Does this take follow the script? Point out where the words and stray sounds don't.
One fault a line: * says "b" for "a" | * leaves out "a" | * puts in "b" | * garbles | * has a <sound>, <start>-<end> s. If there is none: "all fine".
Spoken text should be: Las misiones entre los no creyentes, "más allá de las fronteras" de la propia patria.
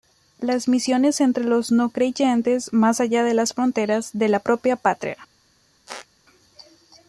* has a squeak, 5.9-6.1 s